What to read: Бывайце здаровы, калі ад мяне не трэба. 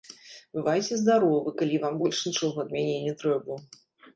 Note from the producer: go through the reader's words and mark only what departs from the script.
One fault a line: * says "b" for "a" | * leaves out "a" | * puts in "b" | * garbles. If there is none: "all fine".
* puts in "вам больш нічога"